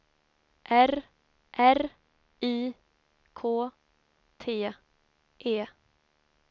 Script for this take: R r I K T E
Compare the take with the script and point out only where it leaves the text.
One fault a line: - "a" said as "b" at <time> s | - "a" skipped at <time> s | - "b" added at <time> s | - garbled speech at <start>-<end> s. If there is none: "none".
none